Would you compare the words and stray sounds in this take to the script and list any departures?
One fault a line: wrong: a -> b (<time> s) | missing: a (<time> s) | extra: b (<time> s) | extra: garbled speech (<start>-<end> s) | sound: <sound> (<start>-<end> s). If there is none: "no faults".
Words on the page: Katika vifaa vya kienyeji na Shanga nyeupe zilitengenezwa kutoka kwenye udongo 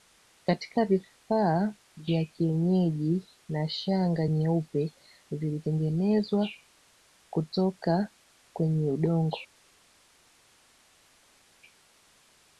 no faults